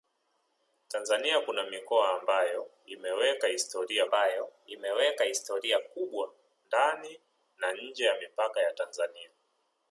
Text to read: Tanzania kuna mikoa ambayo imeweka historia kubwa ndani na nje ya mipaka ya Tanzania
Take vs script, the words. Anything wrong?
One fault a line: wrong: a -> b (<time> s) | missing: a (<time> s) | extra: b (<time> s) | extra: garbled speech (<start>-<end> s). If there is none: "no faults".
extra: ambayo imeweka historia (4.0 s)